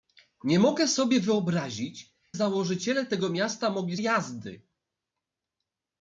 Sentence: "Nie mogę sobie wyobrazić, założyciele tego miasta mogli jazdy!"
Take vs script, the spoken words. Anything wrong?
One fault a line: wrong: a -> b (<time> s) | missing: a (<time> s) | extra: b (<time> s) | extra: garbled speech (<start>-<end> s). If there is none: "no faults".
no faults